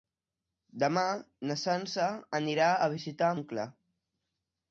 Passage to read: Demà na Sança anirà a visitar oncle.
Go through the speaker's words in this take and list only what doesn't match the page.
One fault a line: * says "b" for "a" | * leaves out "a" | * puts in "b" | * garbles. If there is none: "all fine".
all fine